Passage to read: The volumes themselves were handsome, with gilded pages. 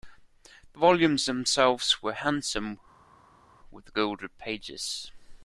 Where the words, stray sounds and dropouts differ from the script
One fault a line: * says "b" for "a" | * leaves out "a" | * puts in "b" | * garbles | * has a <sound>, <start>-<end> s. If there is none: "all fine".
all fine